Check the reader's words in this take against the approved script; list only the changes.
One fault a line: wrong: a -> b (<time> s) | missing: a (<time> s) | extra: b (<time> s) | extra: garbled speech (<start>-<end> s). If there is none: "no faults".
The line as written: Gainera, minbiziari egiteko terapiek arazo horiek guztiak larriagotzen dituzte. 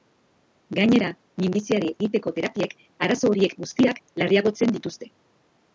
no faults